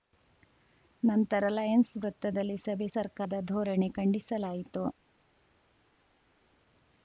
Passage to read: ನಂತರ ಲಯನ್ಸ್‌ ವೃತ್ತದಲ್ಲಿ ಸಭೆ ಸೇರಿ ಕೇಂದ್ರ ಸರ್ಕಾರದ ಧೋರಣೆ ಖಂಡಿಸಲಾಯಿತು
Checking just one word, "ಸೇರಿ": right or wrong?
wrong